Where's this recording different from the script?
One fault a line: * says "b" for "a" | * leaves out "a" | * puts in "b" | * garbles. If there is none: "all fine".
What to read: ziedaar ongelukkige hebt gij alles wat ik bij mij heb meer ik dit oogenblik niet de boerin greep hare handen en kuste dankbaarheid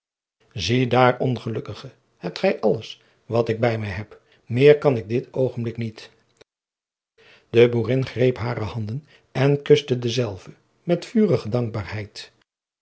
* puts in "kan"
* puts in "dezelve met vurige"